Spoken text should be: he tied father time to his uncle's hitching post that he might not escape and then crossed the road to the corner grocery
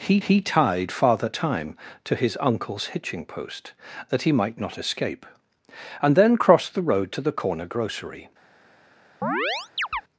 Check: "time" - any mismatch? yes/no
no